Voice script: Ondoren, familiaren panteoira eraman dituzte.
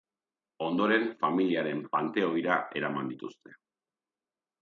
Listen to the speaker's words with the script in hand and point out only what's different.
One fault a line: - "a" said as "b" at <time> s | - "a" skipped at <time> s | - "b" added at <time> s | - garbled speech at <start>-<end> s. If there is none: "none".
none